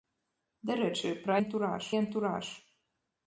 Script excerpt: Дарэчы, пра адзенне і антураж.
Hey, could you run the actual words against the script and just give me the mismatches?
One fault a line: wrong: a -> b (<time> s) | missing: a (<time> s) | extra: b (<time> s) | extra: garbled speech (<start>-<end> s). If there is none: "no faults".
wrong: адзенне -> антураж (1.4 s)